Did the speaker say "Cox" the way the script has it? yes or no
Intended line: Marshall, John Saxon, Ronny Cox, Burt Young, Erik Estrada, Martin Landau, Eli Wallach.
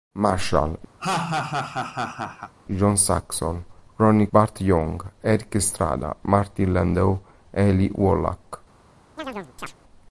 no